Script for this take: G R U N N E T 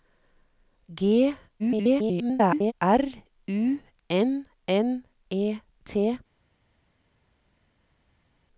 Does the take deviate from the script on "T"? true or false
false